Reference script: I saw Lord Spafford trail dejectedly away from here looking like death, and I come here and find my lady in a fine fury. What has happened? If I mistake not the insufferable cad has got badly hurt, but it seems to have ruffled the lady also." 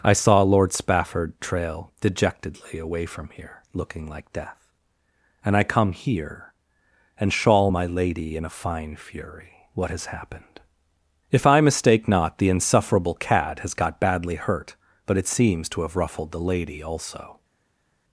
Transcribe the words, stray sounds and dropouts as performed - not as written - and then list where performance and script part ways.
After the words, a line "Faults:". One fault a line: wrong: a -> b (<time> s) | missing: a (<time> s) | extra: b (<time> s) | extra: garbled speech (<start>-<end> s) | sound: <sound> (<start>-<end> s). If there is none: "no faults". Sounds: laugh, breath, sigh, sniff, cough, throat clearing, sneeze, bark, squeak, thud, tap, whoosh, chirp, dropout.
I saw Lord Spafford trail dejectedly away from here looking like death, and I come here and shawl my lady in a fine fury. What has happened? If I mistake not the insufferable cad has got badly hurt, but it seems to have ruffled the lady also."
Faults:
wrong: find -> shawl (7.3 s)